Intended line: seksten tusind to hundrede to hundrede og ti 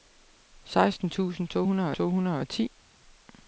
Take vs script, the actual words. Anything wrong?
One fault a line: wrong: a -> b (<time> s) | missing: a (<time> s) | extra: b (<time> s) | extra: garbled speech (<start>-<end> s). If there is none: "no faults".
no faults